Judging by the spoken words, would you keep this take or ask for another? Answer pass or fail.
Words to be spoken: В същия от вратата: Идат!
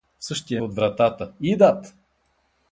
pass